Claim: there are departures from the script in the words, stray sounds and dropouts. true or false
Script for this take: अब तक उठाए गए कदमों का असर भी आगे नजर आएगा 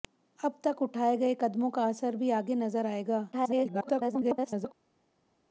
true